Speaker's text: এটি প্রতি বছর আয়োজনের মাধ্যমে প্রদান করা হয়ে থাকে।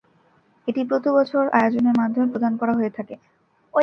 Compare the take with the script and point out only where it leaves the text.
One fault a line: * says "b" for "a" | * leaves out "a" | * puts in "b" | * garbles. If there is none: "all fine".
all fine